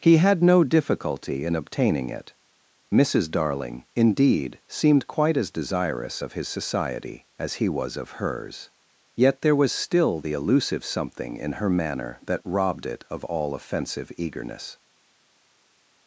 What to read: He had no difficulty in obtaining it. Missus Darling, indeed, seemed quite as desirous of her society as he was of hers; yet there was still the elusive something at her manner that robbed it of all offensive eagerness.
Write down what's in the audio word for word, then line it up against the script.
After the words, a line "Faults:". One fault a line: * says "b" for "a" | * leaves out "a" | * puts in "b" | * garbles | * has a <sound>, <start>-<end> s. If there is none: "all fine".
He had no difficulty in obtaining it. Missus Darling, indeed, seemed quite as desirous of his society as he was of hers; yet there was still the elusive something in her manner that robbed it of all offensive eagerness.
Faults:
* says "his" for "her"
* says "in" for "at"